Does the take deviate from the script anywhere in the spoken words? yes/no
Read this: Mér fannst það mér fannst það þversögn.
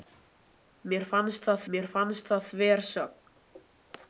no